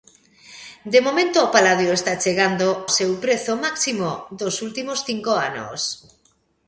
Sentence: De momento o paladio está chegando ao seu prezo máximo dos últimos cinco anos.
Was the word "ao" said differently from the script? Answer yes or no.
yes